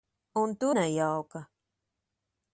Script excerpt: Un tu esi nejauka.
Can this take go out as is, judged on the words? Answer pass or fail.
fail